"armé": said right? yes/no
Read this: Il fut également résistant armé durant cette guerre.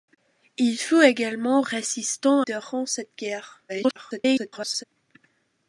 no